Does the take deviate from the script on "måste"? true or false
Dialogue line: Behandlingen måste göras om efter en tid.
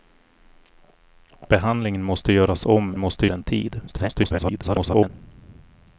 false